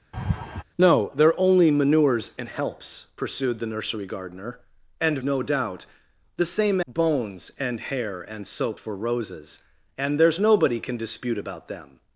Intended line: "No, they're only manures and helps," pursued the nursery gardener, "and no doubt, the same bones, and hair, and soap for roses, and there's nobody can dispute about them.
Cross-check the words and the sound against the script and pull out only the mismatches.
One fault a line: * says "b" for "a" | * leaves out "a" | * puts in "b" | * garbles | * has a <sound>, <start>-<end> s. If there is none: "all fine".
* has a laugh, 0.1-0.6 s